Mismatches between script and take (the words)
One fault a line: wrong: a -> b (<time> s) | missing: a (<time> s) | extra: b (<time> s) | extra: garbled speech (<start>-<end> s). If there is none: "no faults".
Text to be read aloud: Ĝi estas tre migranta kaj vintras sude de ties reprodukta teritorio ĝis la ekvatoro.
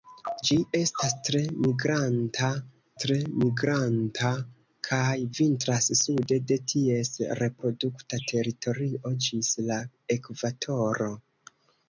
extra: tre migranta (3.0 s)